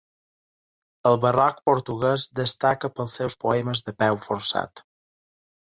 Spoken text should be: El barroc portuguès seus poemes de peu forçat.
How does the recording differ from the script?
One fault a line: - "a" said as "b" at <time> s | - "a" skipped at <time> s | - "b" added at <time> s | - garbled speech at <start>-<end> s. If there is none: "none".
- "destaca pels" added at 2.4 s